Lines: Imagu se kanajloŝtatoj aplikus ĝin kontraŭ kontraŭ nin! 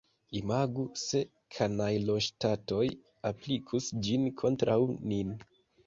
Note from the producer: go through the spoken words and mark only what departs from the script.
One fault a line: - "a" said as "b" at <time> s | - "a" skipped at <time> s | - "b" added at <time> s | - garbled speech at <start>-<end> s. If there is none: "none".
- "kontraŭ" skipped at 4.8 s